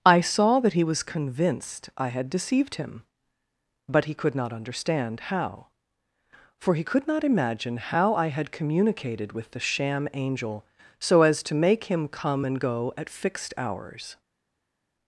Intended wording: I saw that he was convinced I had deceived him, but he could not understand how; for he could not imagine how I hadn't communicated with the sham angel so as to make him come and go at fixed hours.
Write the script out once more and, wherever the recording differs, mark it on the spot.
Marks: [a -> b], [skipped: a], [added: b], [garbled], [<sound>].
I saw that he was convinced I had deceived him, but he could not understand how; for he could not imagine how I [hadn't -> had] communicated with the sham angel so as to make him come and go at fixed hours.